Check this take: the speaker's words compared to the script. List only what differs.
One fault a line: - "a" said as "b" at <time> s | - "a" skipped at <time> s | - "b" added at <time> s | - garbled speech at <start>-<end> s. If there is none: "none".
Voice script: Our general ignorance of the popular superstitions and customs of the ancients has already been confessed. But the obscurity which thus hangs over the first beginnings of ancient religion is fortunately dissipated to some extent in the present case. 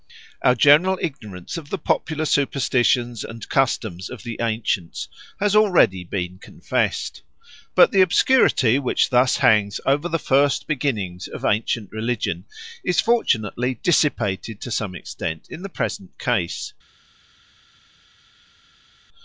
none